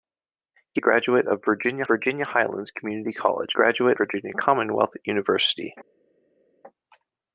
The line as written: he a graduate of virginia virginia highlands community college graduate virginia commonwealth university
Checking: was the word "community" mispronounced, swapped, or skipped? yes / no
no